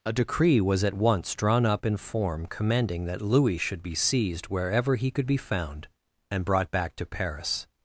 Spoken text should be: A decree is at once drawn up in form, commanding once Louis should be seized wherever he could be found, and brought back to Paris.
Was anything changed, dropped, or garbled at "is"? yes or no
yes